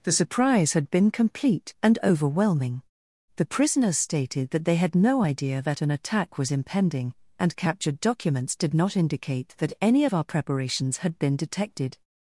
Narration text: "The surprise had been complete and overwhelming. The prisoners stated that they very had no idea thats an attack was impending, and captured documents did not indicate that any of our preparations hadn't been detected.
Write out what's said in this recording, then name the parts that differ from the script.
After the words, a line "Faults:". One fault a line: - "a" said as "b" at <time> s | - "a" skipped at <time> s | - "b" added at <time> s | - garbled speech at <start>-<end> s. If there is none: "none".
"The surprise had been complete and overwhelming. The prisoners stated that they had no idea that an attack was impending, and captured documents did not indicate that any of our preparations had been detected.
Faults:
- "very" skipped at 4.8 s
- "thats" said as "that" at 5.6 s
- "hadn't" said as "had" at 11.0 s